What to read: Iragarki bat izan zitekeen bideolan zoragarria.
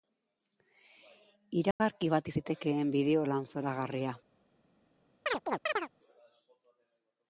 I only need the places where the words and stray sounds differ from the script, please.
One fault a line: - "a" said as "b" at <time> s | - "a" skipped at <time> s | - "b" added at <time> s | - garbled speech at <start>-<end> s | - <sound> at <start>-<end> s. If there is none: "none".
- dropout at 1.7-1.8 s
- "izan" skipped at 2.3 s
- chirp at 5.3-5.9 s